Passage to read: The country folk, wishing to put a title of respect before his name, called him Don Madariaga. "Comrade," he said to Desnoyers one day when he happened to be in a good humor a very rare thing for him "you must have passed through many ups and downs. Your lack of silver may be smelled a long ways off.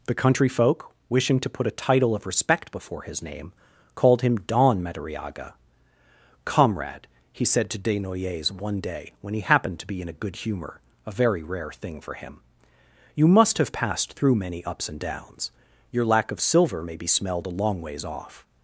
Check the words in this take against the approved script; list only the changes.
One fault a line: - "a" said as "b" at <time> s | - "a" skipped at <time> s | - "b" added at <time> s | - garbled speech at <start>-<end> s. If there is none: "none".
none